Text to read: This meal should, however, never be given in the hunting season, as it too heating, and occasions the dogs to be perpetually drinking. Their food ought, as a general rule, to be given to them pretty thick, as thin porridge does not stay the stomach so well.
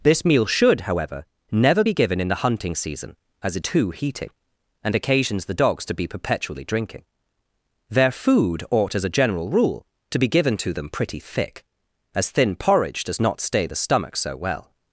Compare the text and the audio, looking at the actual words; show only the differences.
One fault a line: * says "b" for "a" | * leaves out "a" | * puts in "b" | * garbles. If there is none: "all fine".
all fine